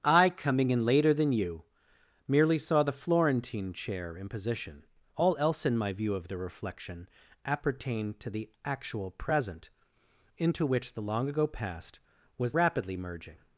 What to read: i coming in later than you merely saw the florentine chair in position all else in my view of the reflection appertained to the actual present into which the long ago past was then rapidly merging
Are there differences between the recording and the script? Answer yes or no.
yes